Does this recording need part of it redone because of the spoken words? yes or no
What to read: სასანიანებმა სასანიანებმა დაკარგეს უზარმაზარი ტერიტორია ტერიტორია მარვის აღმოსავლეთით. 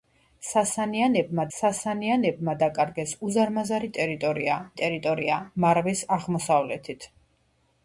no